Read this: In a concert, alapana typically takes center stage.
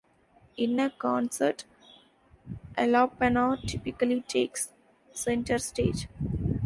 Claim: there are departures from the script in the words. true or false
false